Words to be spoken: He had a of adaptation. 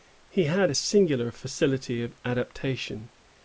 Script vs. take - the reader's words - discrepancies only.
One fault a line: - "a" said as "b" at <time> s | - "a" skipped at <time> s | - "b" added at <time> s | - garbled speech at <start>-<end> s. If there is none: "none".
- "singular facility" added at 0.7 s